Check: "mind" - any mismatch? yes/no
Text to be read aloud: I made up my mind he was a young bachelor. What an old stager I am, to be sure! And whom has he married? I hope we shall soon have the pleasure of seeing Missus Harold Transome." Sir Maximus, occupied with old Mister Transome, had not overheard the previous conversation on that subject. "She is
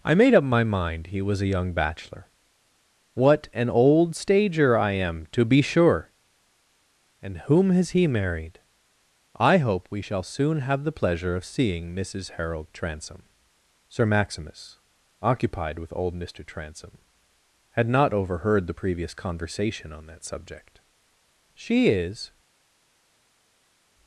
no